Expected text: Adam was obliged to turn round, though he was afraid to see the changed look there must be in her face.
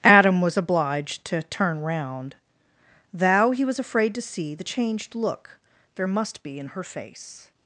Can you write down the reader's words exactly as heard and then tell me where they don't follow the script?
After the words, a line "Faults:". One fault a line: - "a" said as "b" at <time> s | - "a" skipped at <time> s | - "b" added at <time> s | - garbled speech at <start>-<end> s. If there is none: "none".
Adam was obliged to turn round, thou he was afraid to see the changed look there must be in her face.
Faults:
- "though" said as "thou" at 3.1 s